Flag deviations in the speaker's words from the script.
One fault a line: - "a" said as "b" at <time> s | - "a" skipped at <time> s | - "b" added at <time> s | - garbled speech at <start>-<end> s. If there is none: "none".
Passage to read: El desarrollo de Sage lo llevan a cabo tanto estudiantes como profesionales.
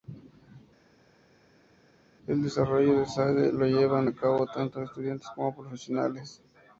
none